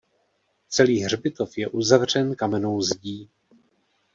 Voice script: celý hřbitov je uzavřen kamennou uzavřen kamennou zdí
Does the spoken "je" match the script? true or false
true